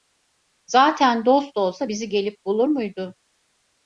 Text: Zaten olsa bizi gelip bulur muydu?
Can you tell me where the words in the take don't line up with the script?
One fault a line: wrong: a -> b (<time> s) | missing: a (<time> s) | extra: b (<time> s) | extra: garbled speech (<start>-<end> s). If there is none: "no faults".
extra: dost (1.2 s)